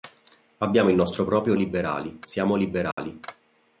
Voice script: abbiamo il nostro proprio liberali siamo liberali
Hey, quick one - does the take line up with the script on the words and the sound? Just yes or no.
no